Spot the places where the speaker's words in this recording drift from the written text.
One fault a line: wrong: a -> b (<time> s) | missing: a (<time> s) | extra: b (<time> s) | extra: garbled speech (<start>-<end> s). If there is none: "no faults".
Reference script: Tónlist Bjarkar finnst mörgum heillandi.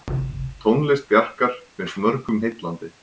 no faults